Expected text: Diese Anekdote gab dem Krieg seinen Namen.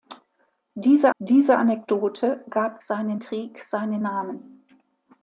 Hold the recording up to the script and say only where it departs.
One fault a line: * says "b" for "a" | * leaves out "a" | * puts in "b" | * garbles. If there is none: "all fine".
* puts in "diese"
* says "seinen" for "dem"